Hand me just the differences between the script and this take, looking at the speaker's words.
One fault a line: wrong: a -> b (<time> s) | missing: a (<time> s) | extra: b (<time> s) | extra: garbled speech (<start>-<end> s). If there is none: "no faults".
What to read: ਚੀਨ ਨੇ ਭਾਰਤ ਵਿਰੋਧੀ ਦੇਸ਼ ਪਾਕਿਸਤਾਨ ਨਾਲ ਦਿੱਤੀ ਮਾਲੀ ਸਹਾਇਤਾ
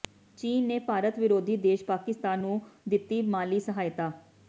wrong: ਨਾਲ -> ਨੂੰ (2.4 s)